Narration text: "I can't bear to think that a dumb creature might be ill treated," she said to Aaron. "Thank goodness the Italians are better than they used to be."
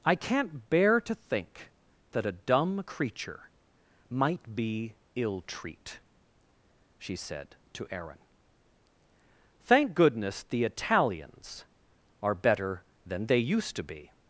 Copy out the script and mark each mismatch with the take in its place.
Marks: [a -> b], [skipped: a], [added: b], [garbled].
"I can't bear to think that a dumb creature might be ill [treated," -> treat] she said to Aaron. "Thank goodness the Italians are better than they used to be."